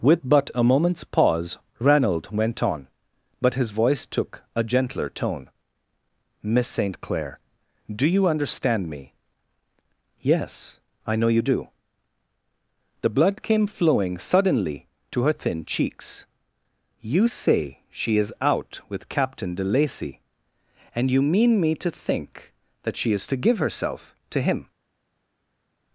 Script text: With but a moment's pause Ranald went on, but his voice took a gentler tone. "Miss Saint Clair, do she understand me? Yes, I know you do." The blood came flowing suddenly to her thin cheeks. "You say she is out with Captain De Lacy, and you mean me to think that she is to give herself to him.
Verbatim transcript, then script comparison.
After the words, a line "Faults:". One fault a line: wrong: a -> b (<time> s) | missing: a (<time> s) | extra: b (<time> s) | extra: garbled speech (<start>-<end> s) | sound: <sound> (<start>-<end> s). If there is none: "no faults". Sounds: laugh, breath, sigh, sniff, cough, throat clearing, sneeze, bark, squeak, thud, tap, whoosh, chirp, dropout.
With but a moment's pause Ranald went on, but his voice took a gentler tone. "Miss Saint Clair, do you understand me? Yes, I know you do." The blood came flowing suddenly to her thin cheeks. "You say she is out with Captain De Lacy, and you mean me to think that she is to give herself to him.
Faults:
wrong: she -> you (8.1 s)